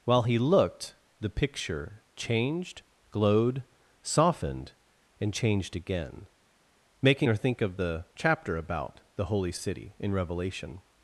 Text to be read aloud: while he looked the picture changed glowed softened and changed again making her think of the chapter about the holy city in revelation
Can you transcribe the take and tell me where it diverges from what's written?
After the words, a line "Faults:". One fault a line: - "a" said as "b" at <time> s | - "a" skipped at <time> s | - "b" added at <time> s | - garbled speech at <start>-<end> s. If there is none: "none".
while he looked the picture changed glowed softened and changed again making her think of the chapter about the holy city in revelation
Faults:
none